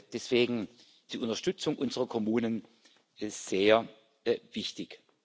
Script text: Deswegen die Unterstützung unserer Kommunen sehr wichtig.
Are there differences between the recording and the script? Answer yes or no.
no